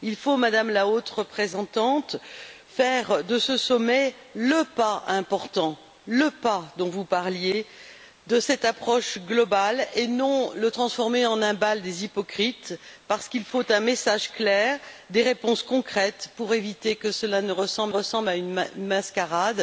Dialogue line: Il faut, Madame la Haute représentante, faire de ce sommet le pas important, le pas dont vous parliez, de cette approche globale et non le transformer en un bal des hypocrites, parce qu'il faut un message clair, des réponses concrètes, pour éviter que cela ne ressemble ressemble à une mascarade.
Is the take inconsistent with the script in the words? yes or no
no